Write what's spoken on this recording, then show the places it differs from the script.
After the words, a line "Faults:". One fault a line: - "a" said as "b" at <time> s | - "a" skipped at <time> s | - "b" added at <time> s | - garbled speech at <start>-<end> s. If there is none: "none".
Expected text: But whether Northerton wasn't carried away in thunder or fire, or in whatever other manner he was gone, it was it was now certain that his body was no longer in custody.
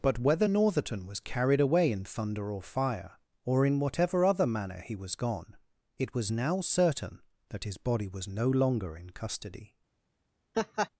But whether Northerton was carried away in thunder or fire, or in whatever other manner he was gone, it was now certain that his body was no longer in custody.
Faults:
- "wasn't" said as "was" at 1.1 s
- "it was" skipped at 6.3 s